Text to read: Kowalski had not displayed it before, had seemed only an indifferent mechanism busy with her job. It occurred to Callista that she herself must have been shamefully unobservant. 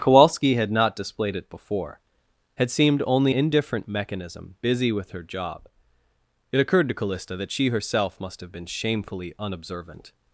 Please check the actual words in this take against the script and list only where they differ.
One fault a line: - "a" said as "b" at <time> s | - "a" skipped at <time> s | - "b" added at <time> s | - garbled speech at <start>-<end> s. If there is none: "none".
- "an" skipped at 3.4 s